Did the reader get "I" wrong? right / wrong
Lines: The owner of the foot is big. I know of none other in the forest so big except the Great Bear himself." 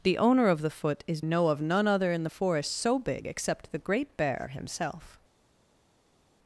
wrong